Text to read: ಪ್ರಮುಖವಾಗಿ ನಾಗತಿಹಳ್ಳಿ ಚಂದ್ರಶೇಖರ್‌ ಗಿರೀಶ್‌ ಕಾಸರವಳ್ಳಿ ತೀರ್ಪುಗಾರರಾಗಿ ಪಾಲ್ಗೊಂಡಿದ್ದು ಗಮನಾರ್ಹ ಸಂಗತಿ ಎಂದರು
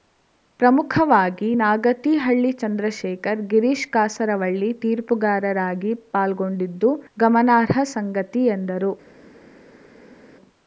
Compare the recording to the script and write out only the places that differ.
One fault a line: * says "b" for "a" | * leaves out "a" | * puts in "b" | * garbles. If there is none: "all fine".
all fine